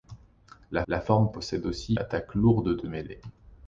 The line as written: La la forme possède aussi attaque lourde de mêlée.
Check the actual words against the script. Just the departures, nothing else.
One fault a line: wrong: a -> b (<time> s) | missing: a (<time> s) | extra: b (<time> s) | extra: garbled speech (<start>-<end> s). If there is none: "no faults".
no faults